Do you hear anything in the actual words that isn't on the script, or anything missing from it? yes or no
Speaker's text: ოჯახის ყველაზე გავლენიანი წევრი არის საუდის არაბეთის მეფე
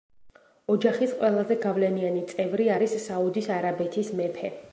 no